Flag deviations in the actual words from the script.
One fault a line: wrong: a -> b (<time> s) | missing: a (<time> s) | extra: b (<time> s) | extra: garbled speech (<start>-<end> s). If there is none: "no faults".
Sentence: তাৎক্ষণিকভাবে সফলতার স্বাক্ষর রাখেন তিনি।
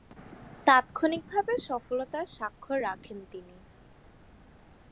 no faults